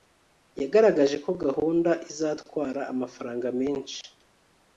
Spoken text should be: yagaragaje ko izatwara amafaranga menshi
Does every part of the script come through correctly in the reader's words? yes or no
no